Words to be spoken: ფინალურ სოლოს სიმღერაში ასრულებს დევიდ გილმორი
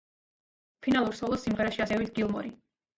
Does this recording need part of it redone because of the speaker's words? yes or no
yes